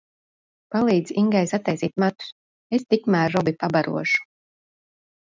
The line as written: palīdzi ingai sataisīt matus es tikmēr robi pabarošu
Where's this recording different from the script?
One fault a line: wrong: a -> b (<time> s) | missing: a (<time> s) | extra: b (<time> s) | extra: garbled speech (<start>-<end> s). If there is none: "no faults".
no faults